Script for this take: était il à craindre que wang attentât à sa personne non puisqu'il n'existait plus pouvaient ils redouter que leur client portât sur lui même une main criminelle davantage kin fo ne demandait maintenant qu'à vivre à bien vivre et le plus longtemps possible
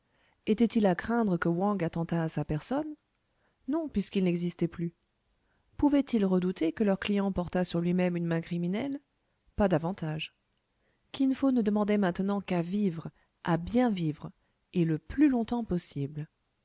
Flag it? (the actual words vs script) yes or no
yes